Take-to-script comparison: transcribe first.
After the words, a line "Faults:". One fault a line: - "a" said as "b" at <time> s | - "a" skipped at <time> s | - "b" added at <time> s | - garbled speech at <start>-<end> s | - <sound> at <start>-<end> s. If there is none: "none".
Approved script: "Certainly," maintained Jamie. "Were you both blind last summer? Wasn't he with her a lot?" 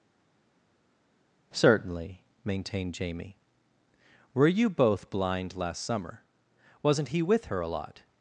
"Certainly," maintained Jamie. "Were you both blind last summer? Wasn't he with her a lot?"
Faults:
none